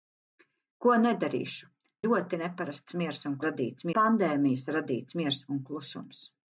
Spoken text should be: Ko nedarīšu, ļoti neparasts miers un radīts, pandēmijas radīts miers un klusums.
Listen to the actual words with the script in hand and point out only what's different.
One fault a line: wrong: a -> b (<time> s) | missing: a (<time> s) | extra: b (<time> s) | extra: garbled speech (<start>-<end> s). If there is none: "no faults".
no faults